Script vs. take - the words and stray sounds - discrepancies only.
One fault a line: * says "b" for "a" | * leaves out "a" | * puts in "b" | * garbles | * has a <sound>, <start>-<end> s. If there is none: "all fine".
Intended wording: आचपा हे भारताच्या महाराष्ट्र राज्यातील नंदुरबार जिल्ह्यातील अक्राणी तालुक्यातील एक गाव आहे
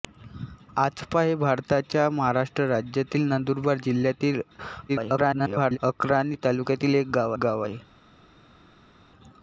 * garbles
* puts in "गाव"